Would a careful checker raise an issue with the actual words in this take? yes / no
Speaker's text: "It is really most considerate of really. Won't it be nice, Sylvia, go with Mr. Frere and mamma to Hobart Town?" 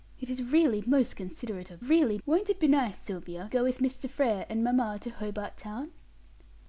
no